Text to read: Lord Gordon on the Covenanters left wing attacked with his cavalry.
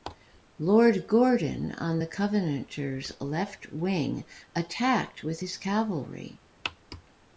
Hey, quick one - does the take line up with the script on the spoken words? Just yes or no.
yes